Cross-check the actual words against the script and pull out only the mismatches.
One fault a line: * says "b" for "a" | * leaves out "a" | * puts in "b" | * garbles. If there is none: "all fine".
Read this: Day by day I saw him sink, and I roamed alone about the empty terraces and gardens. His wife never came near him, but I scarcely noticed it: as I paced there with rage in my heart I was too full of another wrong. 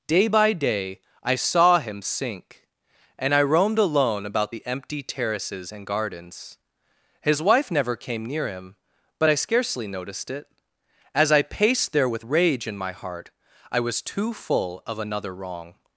all fine